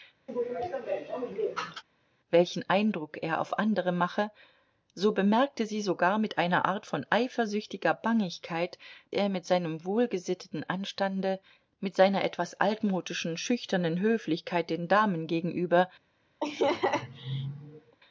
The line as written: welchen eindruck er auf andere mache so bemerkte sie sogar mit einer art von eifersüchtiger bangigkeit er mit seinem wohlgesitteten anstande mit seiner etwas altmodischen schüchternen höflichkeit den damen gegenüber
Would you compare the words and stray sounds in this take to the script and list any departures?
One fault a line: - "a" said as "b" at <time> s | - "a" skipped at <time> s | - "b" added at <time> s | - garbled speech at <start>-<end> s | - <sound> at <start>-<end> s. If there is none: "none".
- sneeze at 0.3-1.8 s
- laugh at 16.4-18.0 s